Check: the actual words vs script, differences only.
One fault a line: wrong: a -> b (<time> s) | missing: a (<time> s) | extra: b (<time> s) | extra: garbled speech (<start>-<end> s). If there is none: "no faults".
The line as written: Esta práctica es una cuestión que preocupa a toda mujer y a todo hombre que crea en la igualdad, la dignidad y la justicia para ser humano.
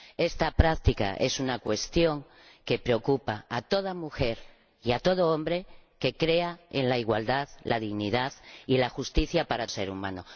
no faults